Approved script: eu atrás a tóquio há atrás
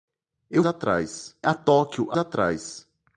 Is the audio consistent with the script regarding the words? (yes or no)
yes